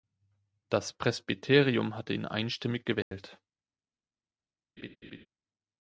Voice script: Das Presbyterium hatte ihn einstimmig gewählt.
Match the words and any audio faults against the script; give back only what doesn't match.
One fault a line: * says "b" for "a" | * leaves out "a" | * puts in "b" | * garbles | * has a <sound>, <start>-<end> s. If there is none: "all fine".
* has a dropout, 3.0-3.1 s
* has a laugh, 4.8-5.3 s